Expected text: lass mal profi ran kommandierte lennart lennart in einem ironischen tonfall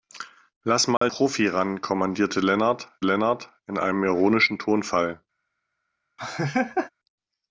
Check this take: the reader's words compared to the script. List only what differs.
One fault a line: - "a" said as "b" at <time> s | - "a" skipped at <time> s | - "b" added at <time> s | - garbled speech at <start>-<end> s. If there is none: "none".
none